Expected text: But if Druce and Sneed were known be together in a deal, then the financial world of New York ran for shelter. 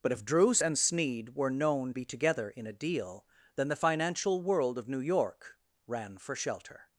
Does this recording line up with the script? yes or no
yes